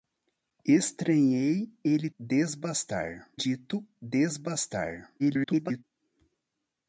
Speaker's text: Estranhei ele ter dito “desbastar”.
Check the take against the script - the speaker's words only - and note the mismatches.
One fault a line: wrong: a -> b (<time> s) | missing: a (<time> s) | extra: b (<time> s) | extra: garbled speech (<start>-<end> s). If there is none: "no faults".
wrong: ter -> desbastar (2.2 s)
extra: garbled speech (5.2-5.8 s)